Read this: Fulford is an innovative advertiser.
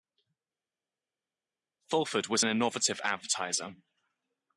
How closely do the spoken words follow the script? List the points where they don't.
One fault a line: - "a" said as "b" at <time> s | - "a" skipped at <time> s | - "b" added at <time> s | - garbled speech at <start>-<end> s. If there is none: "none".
- "is" said as "was" at 2.3 s